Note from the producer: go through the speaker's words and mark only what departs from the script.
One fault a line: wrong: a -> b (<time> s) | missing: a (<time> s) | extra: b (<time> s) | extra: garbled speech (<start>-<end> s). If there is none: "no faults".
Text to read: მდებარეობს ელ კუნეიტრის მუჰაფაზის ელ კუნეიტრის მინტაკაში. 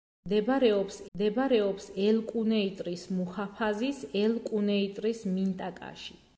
extra: მდებარეობს (1.2 s)